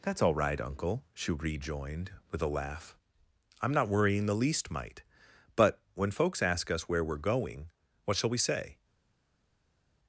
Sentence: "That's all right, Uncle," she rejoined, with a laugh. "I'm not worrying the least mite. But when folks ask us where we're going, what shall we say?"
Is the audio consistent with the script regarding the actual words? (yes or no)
yes